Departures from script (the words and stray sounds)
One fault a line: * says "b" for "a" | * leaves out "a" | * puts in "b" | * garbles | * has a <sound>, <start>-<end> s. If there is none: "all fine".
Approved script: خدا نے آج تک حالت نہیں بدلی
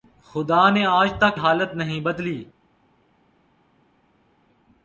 all fine